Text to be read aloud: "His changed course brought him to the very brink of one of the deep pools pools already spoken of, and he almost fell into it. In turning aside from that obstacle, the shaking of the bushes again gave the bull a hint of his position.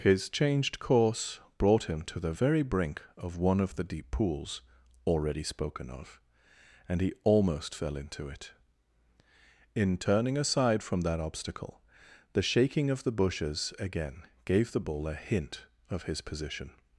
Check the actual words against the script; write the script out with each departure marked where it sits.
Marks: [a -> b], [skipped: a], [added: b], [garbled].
"His changed course brought him to the very brink of one of the deep pools [skipped: pools] already spoken of, and he almost fell into it. In turning aside from that obstacle, the shaking of the bushes again gave the bull a hint of his position.